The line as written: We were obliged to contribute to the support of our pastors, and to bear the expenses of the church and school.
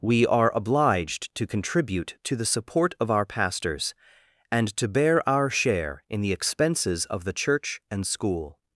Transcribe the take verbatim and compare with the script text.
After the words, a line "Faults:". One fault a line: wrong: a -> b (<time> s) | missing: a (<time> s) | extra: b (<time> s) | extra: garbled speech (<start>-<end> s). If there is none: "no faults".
We are obliged to contribute to the support of our pastors, and to bear our share in the expenses of the church and school.
Faults:
wrong: were -> are (0.2 s)
extra: our share in (5.3 s)